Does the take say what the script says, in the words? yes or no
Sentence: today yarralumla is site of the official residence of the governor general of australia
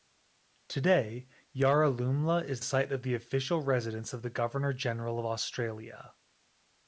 yes